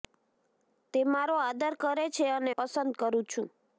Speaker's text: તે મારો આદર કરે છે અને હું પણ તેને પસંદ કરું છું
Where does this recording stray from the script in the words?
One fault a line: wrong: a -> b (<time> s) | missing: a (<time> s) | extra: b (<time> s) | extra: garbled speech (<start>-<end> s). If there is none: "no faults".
missing: હું પણ તેને (2.5 s)